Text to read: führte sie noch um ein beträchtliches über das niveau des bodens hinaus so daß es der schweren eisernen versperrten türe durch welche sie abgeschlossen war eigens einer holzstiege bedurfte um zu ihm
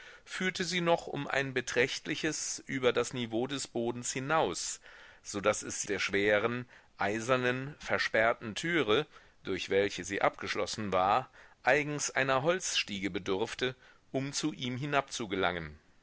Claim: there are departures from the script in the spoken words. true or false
false